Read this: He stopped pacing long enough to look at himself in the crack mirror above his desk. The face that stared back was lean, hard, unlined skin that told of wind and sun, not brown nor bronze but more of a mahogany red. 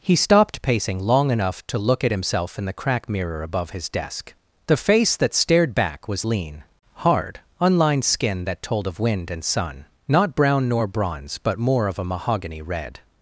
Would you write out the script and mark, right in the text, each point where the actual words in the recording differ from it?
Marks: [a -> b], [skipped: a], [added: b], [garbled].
He stopped pacing long enough to look at himself in the crack mirror above his desk. The face that stared back was lean, hard, unlined skin that told of wind and sun, not brown nor bronze but more of a mahogany red.